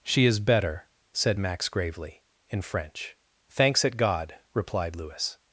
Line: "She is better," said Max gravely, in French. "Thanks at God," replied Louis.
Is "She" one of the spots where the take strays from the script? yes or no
no